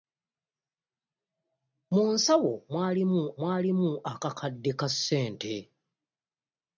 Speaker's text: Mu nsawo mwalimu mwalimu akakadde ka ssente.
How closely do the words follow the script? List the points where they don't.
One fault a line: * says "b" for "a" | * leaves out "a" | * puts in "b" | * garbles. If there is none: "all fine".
all fine